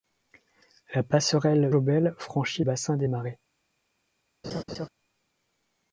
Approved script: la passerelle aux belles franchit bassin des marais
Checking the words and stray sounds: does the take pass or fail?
fail